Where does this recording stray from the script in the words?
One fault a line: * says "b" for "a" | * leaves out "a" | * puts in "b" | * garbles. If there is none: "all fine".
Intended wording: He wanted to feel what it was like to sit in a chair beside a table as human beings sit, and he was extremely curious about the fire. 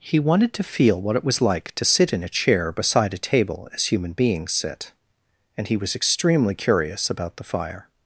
all fine